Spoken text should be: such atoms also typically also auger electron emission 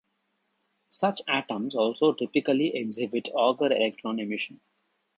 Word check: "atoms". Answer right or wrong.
right